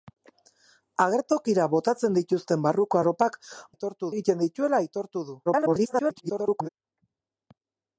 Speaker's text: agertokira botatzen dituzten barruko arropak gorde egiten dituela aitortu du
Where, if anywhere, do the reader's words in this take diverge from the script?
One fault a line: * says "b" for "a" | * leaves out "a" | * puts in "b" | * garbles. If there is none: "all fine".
* says "aitortu" for "gorde"
* garbles